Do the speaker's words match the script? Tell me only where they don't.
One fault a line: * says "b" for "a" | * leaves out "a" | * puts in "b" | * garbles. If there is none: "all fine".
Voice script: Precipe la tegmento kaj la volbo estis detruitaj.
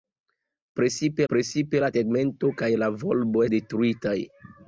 * puts in "precipe"
* leaves out "estis"